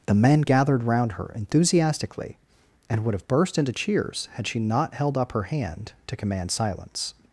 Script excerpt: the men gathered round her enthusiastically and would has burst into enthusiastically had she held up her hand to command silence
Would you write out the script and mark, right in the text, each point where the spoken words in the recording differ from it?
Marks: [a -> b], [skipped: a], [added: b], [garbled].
the men gathered round her enthusiastically and would [has -> have] burst into [enthusiastically -> cheers] had she [added: not] held up her hand to command silence